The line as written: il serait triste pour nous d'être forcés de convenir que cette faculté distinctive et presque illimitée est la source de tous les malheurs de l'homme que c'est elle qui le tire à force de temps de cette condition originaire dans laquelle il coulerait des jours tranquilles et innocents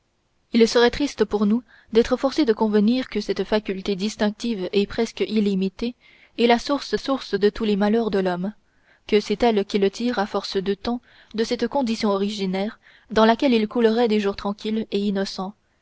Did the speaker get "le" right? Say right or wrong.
right